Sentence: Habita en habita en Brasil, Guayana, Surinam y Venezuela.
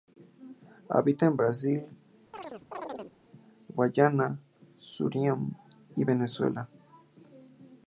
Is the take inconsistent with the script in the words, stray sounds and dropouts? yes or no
yes